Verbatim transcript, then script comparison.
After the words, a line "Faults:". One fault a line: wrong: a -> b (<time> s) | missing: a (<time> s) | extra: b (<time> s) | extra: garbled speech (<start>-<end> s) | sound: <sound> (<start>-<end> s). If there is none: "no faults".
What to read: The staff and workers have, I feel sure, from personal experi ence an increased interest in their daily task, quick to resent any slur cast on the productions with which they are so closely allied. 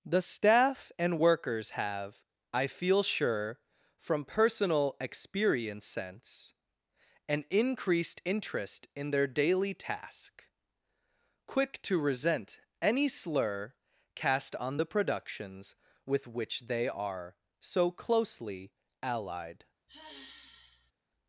The staff and workers have, I feel sure, from personal experience sense an increased interest in their daily task, quick to resent any slur cast on the productions with which they are so closely allied.
Faults:
wrong: experi ence -> experience sense (5.0 s)
sound: sigh (19.9-20.9 s)